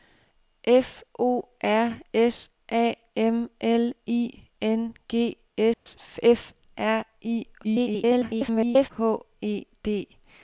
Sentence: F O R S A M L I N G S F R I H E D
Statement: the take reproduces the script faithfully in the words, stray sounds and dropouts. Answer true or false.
false